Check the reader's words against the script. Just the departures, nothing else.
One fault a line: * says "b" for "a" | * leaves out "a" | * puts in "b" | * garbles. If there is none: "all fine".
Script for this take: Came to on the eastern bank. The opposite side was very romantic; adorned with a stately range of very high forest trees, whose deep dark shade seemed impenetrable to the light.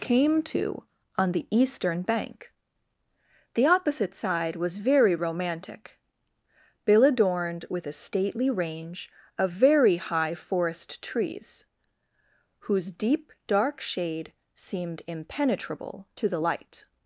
* puts in "bill"